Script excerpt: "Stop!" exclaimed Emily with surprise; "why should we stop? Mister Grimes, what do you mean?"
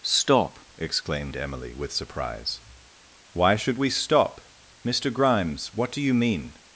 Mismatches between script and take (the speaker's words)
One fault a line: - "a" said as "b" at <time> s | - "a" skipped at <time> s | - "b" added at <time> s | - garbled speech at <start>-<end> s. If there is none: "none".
none